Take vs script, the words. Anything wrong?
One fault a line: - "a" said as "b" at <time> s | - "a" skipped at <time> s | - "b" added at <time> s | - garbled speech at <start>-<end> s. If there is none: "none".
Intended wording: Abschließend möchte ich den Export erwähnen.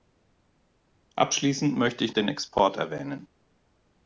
none